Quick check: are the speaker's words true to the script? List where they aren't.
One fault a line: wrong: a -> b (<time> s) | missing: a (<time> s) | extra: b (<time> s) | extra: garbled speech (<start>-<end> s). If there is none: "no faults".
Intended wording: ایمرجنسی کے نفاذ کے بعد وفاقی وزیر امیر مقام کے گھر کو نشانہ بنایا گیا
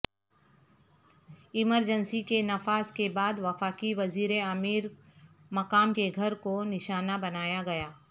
no faults